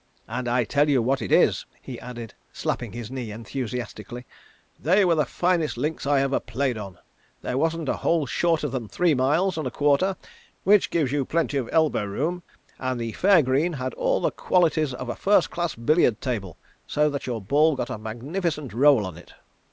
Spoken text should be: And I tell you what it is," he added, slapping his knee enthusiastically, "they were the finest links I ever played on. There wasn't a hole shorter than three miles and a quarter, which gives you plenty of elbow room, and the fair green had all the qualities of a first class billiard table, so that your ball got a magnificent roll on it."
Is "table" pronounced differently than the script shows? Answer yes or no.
no